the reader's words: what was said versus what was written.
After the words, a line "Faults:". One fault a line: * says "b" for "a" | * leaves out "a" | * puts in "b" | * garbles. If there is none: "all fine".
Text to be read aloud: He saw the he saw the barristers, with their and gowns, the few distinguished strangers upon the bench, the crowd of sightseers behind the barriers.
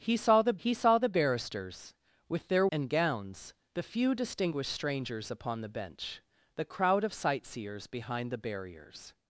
He saw the he saw the barristers, with their and gowns, the few distinguished strangers upon the bench, the crowd of sightseers behind the barriers.
Faults:
all fine